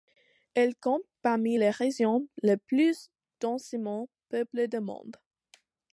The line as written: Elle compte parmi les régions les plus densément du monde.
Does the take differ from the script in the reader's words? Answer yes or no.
yes